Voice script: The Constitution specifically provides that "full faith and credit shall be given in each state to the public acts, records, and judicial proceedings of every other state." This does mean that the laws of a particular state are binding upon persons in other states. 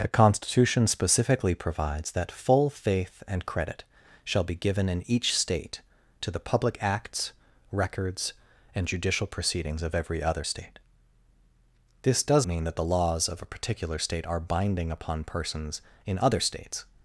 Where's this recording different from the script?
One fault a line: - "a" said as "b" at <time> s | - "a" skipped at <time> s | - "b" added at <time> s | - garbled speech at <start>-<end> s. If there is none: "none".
none